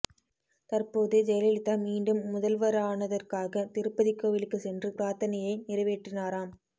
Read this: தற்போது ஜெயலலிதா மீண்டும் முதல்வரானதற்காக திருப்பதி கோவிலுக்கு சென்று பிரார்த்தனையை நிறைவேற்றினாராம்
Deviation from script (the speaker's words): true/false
false